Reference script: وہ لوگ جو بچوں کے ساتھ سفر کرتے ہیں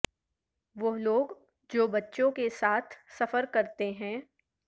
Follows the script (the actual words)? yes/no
yes